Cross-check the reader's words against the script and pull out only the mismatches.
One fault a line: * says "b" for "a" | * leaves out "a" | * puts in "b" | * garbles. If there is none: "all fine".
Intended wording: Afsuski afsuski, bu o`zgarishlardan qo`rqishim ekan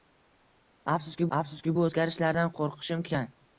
all fine